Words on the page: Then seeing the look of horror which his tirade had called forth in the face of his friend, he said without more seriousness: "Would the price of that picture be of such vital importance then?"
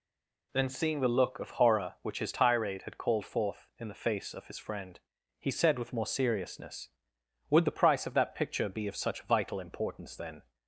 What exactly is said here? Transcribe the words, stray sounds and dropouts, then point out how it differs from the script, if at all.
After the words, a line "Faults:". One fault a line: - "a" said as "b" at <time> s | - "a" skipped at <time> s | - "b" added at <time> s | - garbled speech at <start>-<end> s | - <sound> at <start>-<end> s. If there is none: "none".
Then seeing the look of horror which his tirade had called forth in the face of his friend, he said with more seriousness: "Would the price of that picture be of such vital importance then?"
Faults:
- "without" said as "with" at 5.8 s